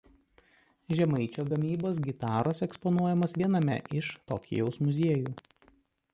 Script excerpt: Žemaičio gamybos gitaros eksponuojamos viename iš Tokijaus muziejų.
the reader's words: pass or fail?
pass